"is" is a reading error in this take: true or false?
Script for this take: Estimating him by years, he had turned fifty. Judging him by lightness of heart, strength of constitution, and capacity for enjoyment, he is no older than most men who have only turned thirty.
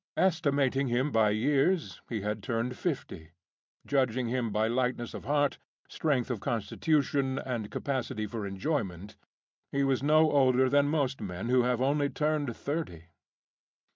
true